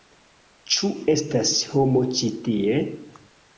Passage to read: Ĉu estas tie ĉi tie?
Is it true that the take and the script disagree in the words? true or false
true